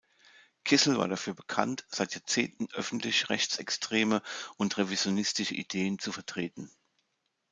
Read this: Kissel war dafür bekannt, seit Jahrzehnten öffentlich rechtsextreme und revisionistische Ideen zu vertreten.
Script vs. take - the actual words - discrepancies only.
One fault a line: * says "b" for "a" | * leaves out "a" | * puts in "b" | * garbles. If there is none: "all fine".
all fine